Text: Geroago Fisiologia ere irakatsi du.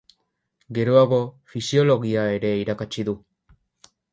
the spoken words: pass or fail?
pass